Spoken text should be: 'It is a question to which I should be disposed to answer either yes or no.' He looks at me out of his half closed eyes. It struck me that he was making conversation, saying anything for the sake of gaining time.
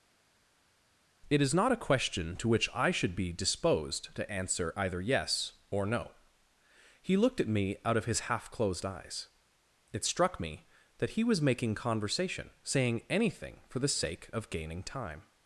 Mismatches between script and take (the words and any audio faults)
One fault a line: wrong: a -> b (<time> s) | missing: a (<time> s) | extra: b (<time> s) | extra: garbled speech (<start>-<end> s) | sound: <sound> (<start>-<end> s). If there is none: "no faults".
extra: not (1.5 s)
wrong: looks -> looked (7.2 s)